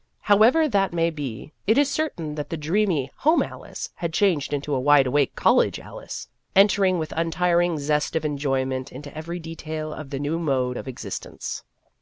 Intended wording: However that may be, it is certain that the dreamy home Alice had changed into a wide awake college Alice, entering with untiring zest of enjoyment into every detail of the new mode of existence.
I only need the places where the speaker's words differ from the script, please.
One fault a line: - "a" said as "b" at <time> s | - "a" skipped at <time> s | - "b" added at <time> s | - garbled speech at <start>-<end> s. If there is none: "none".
none